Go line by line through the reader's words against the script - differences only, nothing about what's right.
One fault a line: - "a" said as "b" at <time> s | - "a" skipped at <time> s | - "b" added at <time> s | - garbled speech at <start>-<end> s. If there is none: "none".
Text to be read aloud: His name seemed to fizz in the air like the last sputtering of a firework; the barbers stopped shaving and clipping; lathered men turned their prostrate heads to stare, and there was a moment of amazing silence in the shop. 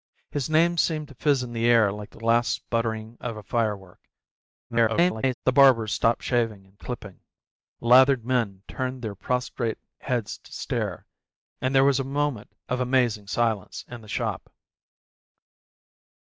- garbled speech at 4.7-5.3 s